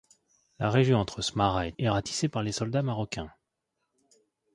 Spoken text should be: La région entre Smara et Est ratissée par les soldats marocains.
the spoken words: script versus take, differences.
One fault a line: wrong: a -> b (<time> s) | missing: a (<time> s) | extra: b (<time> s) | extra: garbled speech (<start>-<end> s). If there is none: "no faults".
no faults